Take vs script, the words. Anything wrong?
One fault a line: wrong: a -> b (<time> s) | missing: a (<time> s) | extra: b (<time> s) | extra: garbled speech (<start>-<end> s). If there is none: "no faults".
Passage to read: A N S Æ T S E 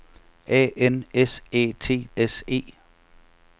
no faults